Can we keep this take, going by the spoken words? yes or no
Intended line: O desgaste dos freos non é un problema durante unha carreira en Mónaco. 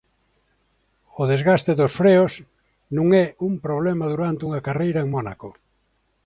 yes